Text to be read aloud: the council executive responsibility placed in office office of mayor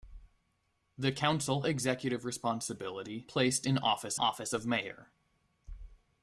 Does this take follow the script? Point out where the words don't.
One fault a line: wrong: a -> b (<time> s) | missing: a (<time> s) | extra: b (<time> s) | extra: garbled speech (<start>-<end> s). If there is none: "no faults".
no faults